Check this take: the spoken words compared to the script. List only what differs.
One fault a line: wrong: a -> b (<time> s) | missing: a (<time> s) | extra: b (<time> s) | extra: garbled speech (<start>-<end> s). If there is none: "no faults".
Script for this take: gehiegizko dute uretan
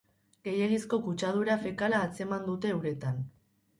extra: kutsadura fekala atzeman (1.1 s)